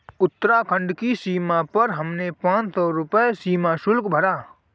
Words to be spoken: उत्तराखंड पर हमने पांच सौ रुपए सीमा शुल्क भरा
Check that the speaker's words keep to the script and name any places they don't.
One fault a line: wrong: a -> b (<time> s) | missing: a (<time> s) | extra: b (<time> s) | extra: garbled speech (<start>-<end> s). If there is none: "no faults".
extra: की सीमा (0.9 s)